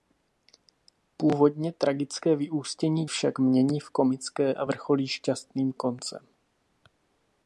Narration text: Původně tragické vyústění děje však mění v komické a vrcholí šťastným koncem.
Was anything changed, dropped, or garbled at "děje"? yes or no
yes